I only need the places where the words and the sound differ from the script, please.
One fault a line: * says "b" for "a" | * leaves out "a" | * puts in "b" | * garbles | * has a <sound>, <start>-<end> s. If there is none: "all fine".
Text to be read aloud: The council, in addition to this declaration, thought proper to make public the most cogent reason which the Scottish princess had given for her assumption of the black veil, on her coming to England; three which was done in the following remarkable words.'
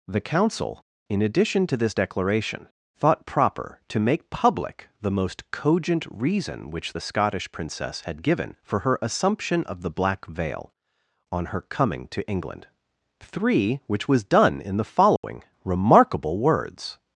* has a dropout, 15.2-15.2 s